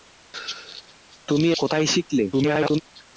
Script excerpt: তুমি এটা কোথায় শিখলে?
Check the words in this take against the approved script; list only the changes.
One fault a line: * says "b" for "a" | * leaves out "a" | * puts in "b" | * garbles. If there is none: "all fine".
* leaves out "এটা"
* garbles